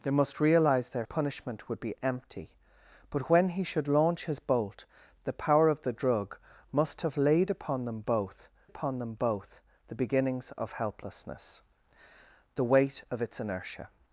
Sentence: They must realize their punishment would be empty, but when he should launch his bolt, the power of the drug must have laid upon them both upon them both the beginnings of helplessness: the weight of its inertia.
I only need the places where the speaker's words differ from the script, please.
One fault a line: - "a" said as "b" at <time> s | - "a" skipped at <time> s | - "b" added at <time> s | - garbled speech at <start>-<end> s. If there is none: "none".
none